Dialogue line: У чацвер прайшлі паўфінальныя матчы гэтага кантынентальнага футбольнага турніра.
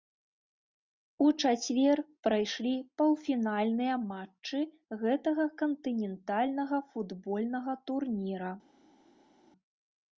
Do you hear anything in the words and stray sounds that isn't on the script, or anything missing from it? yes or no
no